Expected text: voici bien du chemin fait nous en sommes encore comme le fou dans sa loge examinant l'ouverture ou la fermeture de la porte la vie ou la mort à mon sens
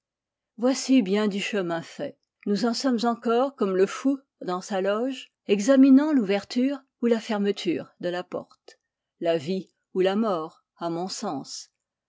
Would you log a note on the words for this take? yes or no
no